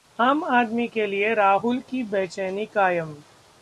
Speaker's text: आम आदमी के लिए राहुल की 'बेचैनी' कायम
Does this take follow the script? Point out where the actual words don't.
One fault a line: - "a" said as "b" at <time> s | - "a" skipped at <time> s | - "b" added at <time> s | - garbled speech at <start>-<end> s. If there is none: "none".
none